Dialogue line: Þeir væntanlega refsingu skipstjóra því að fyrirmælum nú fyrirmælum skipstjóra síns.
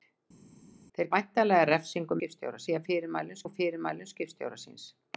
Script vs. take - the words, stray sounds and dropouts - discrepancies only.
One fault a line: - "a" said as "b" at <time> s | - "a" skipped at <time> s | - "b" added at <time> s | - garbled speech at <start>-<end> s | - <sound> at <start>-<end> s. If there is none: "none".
none